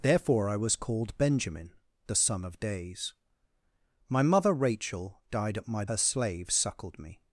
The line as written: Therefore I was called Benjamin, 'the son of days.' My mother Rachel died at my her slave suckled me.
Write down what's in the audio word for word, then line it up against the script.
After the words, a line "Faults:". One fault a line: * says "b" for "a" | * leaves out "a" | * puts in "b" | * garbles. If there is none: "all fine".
Therefore I was called Benjamin, 'the son of days.' My mother Rachel died at my her slave suckled me.
Faults:
all fine